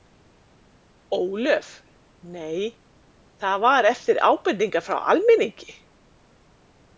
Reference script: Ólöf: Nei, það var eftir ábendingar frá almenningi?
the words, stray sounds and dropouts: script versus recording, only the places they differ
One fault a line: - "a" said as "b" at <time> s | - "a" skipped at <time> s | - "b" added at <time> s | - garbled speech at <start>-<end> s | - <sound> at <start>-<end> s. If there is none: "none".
none